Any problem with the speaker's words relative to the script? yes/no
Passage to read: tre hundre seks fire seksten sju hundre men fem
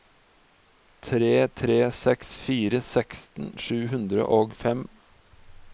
yes